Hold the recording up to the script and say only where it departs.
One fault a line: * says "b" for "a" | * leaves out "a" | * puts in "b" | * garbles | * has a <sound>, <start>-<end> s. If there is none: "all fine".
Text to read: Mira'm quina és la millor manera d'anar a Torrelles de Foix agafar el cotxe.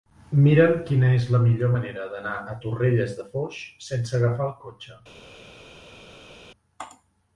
* puts in "sense"